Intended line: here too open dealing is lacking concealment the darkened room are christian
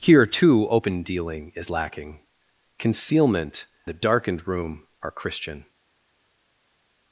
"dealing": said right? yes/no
yes